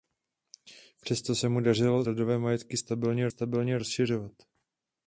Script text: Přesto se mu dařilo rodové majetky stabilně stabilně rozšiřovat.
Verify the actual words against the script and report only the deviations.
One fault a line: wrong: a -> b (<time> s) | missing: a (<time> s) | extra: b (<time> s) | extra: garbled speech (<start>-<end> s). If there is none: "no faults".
no faults